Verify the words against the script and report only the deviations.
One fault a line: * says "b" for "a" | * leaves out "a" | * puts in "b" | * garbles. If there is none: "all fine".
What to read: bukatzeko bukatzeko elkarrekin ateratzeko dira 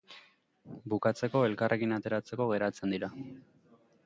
* leaves out "bukatzeko"
* puts in "geratzen"